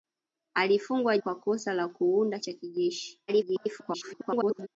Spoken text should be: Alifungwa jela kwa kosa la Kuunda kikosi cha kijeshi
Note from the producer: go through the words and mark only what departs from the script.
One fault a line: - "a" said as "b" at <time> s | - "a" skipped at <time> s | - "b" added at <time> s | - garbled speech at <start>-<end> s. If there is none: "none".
- "jela" skipped at 1.2 s
- "kikosi" skipped at 2.4 s
- garbled speech at 3.3-4.7 s